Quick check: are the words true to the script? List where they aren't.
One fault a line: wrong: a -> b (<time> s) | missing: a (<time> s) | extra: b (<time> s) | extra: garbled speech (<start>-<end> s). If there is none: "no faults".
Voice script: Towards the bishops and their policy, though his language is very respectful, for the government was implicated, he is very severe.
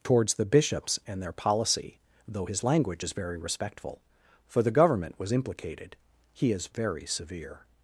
no faults